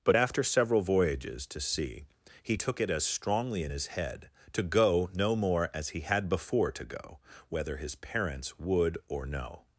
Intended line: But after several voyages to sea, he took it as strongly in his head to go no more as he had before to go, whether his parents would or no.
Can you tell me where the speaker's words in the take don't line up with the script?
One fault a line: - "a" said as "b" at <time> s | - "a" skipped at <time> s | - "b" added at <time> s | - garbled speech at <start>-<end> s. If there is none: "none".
none